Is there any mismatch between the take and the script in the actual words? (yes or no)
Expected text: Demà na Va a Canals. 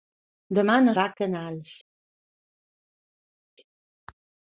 no